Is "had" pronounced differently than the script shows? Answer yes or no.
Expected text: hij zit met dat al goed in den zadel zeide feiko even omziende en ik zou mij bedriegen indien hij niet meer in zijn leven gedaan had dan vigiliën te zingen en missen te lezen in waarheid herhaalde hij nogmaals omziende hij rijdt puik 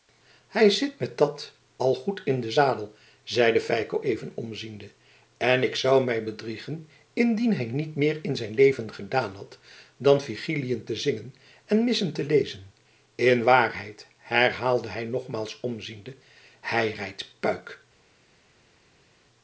no